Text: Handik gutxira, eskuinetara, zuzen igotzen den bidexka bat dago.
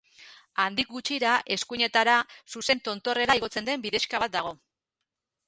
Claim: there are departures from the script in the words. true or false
true